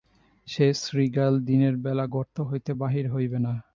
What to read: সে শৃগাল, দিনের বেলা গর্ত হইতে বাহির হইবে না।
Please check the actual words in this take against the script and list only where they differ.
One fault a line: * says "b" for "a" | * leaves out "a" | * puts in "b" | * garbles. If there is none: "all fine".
all fine